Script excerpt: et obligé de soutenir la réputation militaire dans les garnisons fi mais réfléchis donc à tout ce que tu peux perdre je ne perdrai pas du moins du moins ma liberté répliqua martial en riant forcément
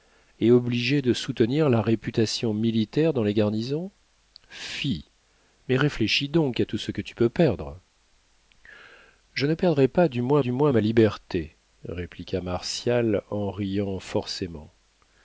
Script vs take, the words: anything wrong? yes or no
no